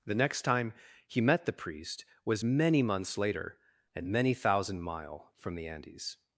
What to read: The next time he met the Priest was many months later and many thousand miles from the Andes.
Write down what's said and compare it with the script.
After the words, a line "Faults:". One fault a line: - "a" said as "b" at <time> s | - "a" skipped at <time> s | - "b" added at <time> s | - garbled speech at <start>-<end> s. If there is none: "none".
The next time he met the Priest was many months later and many thousand mile from the Andes.
Faults:
- "miles" said as "mile" at 4.8 s